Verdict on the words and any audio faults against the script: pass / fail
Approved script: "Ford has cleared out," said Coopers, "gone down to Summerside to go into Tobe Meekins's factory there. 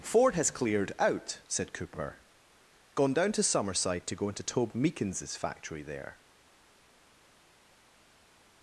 fail